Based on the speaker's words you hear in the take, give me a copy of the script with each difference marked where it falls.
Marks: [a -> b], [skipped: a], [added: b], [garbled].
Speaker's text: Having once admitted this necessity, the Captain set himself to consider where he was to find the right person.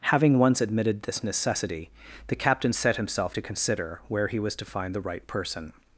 Having once admitted this necessity, the Captain set himself to consider where he was to find the right person.